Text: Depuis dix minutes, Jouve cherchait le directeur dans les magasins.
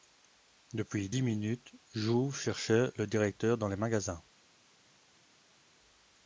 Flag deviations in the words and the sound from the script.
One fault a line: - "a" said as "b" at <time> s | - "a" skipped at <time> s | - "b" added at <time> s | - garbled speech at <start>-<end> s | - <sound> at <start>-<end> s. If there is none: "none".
none